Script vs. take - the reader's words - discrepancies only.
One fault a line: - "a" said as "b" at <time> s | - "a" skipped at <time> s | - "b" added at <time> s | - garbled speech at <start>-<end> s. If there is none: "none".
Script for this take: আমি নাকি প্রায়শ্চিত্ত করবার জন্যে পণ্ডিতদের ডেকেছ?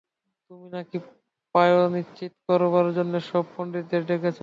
- "আমি" said as "তুমি" at 0.5 s
- "সব" added at 3.3 s